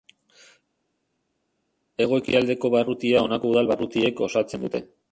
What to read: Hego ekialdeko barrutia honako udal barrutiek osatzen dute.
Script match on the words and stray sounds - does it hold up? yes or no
yes